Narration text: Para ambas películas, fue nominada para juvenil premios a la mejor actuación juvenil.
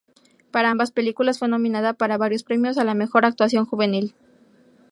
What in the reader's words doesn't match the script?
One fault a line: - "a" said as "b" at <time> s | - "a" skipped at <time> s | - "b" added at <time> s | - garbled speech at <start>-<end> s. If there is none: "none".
- "juvenil" said as "varios" at 2.1 s